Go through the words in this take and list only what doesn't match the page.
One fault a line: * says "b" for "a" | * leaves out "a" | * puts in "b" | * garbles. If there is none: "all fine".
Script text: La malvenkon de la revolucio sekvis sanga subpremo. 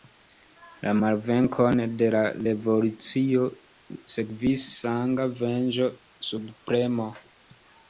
* puts in "venĝo"